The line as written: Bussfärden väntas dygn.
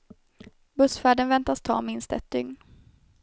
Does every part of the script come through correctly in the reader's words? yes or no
no